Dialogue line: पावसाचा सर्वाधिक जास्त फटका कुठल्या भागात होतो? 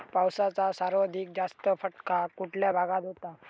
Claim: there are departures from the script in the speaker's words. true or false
false